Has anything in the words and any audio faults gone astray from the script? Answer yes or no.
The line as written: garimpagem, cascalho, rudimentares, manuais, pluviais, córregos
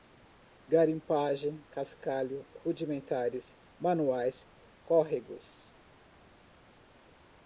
yes